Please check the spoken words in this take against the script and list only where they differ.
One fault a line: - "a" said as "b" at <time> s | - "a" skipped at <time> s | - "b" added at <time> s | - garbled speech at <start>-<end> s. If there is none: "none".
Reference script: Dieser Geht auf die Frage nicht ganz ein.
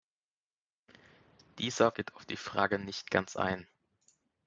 none